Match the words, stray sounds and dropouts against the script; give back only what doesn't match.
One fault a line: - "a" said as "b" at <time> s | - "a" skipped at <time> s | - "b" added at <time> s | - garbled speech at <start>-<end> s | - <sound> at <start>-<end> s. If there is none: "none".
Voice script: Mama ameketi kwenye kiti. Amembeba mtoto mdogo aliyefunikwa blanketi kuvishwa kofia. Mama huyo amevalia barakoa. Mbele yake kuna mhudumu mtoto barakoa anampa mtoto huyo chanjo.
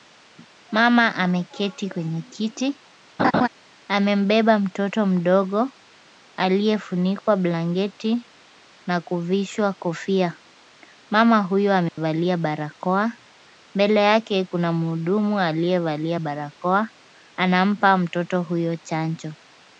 - laugh at 3.2-3.5 s
- "na" added at 8.9 s
- dropout at 11.9-12.0 s
- "mtoto" said as "aliyevalia" at 15.4 s